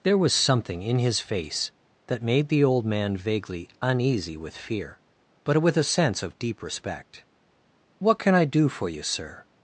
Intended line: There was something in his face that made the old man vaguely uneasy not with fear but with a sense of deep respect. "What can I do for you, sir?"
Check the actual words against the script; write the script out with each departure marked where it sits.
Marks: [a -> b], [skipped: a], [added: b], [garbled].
There was something in his face that made the old man vaguely uneasy [skipped: not] with fear but with a sense of deep respect. "What can I do for you, sir?"